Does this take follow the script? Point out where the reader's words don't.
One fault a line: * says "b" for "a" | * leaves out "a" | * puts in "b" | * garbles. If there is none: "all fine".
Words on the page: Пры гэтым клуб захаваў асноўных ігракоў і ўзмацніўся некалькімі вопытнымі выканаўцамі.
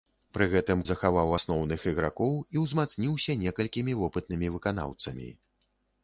* leaves out "клуб"